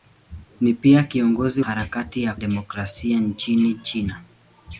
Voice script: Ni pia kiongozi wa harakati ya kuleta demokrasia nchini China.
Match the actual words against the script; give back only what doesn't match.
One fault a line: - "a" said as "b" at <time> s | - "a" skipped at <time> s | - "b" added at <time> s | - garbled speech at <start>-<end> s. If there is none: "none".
- "wa" skipped at 1.6 s
- "kuleta" skipped at 2.3 s